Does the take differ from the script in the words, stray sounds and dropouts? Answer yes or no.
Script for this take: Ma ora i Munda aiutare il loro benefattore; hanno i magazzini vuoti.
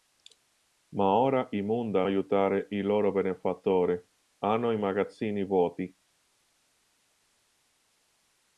no